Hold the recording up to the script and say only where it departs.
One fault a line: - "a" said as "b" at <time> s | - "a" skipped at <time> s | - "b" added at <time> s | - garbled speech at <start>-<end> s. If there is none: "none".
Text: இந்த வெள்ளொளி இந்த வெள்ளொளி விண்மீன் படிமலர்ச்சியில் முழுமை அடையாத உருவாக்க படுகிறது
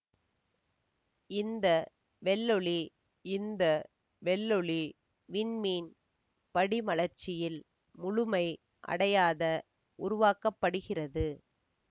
none